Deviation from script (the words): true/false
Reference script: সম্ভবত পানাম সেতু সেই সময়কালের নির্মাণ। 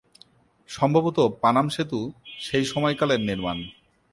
false